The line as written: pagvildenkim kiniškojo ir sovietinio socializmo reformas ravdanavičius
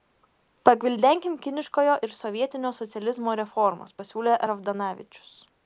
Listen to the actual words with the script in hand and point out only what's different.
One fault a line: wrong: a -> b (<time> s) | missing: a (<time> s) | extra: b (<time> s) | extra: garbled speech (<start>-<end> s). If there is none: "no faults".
extra: pasiūlė (4.0 s)